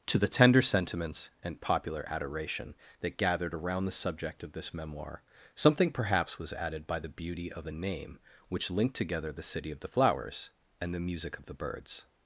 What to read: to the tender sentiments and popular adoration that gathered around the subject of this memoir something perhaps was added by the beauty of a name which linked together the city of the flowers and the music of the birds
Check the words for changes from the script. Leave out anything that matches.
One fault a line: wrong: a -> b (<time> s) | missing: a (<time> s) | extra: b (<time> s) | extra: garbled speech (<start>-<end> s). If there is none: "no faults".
no faults